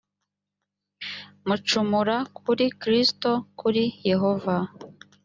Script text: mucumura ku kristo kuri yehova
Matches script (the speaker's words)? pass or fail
fail